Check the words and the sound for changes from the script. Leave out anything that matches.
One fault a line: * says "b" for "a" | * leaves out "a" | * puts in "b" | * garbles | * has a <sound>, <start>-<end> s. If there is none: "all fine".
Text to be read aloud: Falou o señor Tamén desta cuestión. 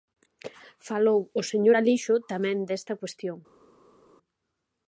* puts in "Alixo"